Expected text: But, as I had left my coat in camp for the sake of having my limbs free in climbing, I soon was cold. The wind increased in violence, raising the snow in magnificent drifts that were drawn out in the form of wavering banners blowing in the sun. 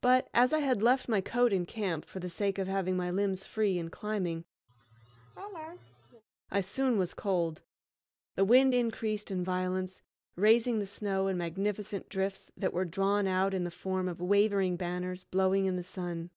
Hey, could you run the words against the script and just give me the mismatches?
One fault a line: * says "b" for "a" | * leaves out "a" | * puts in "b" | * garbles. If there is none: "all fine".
all fine